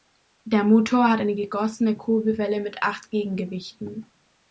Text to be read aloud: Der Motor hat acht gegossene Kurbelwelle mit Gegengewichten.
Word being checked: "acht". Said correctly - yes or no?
no